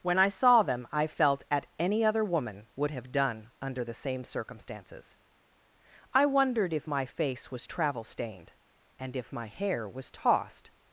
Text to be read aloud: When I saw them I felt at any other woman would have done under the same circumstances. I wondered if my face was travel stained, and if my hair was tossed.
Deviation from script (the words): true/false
false